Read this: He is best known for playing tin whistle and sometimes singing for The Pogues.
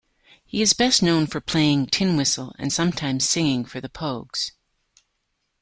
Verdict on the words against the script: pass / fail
pass